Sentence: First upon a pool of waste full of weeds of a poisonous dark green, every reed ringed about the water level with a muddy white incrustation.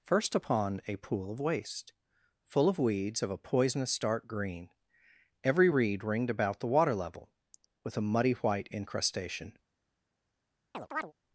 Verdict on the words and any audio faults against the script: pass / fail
fail